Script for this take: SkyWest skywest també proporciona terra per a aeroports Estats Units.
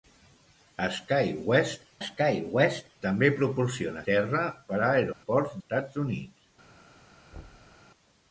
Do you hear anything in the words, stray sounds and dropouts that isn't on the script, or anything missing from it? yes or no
yes